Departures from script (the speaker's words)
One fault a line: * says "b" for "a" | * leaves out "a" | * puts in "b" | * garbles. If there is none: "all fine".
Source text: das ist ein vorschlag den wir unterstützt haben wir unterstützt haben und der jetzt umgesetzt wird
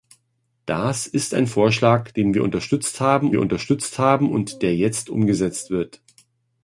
all fine